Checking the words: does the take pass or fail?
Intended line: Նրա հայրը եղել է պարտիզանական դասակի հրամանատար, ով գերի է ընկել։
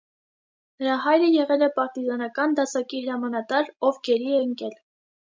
pass